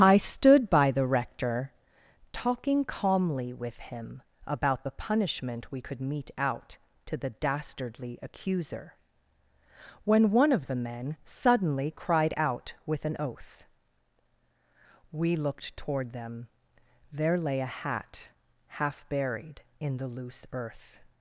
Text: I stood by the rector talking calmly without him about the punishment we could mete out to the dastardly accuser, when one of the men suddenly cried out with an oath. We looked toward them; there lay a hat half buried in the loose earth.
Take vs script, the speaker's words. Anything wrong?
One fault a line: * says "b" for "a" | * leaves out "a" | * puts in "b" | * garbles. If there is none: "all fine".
* says "with" for "without"